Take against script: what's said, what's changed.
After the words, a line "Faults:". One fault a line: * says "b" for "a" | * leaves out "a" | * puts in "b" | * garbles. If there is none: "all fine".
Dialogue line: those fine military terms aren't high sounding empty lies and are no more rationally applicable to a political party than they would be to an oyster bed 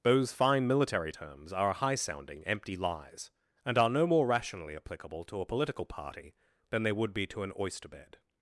those fine military terms are high sounding empty lies and are no more rationally applicable to a political party than they would be to an oyster bed
Faults:
* says "are" for "aren't"